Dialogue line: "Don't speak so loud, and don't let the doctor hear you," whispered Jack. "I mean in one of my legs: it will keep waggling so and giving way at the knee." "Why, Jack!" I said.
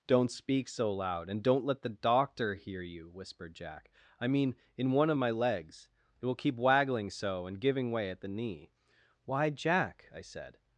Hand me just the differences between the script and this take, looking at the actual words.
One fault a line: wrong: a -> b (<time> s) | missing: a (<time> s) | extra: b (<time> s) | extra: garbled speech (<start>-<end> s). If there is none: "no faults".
no faults